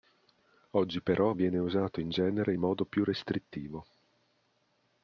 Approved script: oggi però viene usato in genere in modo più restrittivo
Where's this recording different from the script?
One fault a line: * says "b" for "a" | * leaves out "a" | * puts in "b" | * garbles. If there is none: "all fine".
all fine